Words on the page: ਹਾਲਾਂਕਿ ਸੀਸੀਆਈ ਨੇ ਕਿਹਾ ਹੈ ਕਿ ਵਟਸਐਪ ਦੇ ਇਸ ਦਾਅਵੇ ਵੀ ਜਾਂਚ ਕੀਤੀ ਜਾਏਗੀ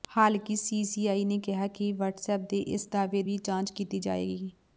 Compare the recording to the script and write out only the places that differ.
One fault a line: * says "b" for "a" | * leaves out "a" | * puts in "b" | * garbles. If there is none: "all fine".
all fine